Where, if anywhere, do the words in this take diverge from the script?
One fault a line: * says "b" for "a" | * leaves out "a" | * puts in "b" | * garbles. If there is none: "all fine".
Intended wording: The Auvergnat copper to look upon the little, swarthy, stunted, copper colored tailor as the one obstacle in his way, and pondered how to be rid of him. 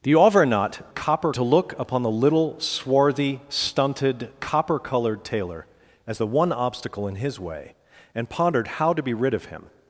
all fine